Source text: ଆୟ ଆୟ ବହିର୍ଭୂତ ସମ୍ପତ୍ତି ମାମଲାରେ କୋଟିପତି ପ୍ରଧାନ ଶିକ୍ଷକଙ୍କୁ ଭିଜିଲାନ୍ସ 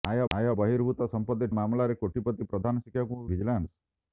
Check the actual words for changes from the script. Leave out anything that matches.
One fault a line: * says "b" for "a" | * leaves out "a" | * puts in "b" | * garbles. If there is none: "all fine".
all fine